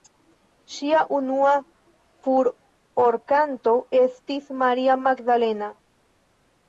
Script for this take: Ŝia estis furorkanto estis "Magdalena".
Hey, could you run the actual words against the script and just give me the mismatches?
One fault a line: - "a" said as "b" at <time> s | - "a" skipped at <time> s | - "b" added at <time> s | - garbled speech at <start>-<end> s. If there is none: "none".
- "estis" said as "unua" at 1.1 s
- "Maria" added at 4.6 s